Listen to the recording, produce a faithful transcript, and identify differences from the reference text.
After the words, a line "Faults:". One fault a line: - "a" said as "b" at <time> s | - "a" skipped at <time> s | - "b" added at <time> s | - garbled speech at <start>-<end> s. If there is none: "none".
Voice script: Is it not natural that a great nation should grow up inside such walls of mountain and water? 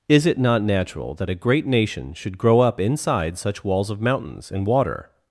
Is it not natural that a great nation should grow up inside such walls of mountains and water?
Faults:
- "mountain" said as "mountains" at 4.0 s